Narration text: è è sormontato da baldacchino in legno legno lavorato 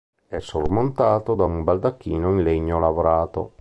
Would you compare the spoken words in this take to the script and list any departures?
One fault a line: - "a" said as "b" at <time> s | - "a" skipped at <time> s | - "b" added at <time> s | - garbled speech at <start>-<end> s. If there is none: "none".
- "è" skipped at 0.4 s
- "un" added at 1.4 s
- "legno" skipped at 2.8 s